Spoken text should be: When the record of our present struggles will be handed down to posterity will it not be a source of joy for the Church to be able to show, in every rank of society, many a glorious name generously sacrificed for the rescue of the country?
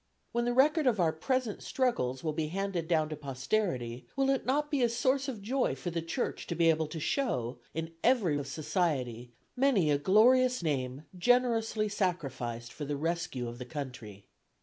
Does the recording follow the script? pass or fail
fail